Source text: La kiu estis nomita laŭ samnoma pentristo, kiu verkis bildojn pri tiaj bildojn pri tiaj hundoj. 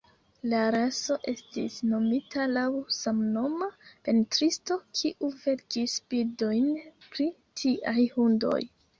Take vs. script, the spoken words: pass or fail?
fail